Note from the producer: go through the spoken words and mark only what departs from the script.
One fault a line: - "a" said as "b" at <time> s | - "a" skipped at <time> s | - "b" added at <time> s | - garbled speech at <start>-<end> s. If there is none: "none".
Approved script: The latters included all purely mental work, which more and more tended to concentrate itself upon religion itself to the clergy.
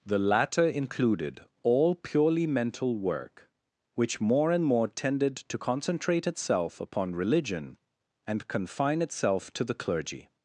- "latters" said as "latter" at 0.2 s
- "and confine" added at 8.3 s